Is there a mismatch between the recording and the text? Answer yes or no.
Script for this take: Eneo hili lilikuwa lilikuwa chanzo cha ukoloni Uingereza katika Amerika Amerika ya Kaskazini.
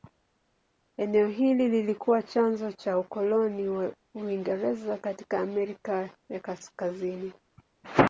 yes